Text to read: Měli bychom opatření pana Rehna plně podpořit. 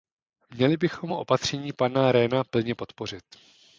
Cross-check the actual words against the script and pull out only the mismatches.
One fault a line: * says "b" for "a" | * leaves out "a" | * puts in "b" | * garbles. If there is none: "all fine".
all fine